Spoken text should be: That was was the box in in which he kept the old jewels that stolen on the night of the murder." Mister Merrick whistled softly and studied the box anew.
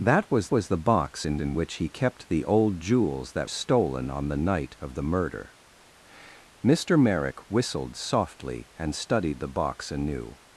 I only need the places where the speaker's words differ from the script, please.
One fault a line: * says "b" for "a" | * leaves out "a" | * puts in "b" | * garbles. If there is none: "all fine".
all fine